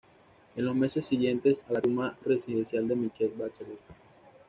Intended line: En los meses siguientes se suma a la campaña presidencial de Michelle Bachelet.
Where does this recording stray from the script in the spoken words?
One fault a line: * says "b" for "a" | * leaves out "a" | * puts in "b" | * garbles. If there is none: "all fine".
* leaves out "se suma"
* says "suma" for "campaña"